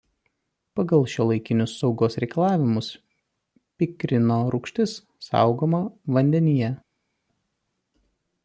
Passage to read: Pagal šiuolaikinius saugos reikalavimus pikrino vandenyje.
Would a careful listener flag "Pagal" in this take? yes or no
no